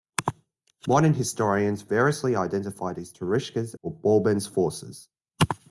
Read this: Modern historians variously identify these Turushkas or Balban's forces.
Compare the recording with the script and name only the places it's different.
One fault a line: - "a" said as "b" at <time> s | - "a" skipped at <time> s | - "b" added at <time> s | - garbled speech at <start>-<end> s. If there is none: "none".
none